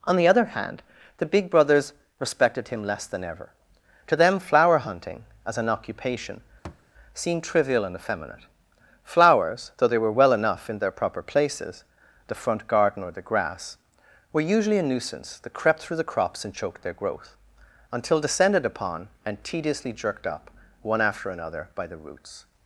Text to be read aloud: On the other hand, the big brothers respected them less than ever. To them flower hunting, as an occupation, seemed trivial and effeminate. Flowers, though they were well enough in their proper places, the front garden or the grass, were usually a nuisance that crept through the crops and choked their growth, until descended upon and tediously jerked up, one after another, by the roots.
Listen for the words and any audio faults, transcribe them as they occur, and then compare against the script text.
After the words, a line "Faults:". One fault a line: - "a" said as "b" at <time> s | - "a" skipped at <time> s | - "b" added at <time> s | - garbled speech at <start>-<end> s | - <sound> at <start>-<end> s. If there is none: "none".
On the other hand, the big brothers respected him less than ever. To them flower hunting, as an occupation, seemed trivial and effeminate. Flowers, though they were well enough in their proper places, the front garden or the grass, were usually a nuisance that crept through the crops and choked their growth, until descended upon and tediously jerked up, one after another, by the roots.
Faults:
- "them" said as "him" at 2.7 s
- thud at 6.6-6.9 s